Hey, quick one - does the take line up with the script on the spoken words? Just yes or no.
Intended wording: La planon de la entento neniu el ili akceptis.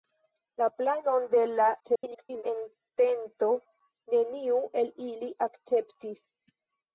no